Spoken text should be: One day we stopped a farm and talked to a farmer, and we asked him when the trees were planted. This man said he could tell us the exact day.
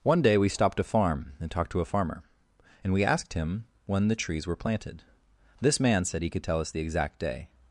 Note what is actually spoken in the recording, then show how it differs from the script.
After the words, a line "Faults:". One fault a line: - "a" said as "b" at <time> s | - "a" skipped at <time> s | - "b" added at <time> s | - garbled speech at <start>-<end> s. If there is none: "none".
One day we stopped a farm and talked to a farmer, and we asked him when the trees were planted. This man said he could tell us the exact day.
Faults:
none